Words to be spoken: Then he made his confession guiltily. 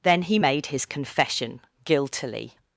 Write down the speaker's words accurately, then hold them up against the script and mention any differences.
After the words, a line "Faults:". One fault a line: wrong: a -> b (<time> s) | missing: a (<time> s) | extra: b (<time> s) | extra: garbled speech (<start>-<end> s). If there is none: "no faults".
Then he made his confession guiltily.
Faults:
no faults